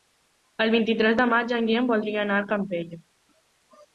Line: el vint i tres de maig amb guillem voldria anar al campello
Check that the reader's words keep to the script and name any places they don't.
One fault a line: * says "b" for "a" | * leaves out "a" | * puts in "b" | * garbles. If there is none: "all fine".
* says "en" for "amb"